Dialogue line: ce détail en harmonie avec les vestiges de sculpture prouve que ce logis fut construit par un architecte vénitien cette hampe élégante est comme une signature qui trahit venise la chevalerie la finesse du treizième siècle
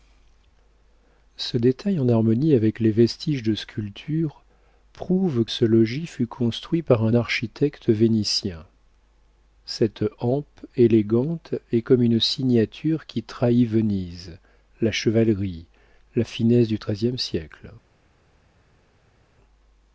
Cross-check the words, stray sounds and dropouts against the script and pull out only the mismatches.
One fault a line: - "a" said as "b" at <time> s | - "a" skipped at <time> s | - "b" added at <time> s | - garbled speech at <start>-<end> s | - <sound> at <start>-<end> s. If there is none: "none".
- "que" skipped at 5.5 s